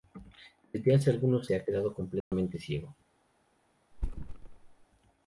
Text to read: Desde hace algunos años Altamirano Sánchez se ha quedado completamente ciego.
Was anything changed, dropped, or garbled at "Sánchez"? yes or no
yes